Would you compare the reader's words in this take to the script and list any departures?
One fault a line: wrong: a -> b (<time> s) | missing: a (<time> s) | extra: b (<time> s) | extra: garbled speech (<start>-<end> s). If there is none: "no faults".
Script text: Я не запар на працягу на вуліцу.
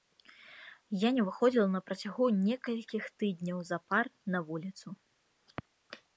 wrong: запар -> выходзіла (1.3 s)
extra: некалькіх тыдняў запар (2.5 s)